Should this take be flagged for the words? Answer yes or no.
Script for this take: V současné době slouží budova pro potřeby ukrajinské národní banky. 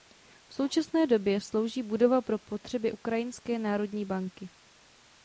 no